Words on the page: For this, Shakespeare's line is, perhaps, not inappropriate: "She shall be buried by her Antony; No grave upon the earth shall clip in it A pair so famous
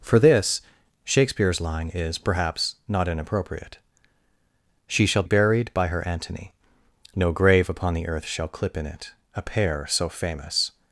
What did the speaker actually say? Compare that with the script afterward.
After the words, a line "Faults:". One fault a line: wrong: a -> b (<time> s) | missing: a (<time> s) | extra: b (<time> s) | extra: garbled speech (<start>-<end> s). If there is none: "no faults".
For this, Shakespeare's line is, perhaps, not inappropriate: "She shall buried by her Antony; No grave upon the earth shall clip in it A pair so famous
Faults:
missing: be (5.2 s)